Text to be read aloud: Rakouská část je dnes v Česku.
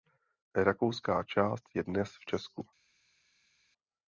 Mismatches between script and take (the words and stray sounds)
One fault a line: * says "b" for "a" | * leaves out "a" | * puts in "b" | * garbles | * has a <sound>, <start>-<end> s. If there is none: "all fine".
all fine